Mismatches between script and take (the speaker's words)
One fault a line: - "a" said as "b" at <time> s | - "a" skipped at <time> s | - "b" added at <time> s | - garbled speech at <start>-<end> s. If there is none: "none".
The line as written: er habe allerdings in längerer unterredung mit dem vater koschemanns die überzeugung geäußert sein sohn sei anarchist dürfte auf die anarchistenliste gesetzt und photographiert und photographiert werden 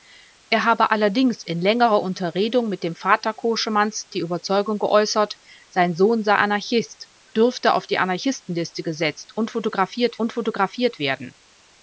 none